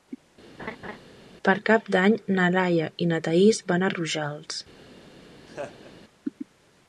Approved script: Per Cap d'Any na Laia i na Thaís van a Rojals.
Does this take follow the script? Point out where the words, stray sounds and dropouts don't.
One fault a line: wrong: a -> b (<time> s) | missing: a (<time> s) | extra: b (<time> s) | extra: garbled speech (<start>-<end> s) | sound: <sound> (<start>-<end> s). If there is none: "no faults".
sound: laugh (0.6-1.0 s)
sound: laugh (5.5-5.9 s)